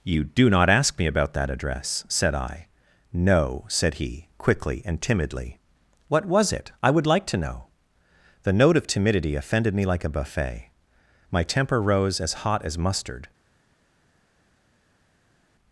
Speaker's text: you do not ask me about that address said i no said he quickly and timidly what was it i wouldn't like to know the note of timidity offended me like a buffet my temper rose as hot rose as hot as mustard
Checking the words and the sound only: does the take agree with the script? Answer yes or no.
no